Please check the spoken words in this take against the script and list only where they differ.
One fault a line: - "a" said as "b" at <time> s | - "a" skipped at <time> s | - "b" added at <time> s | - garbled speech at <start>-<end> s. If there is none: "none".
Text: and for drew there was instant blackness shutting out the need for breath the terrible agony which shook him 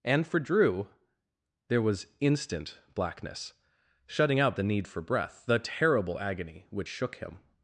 none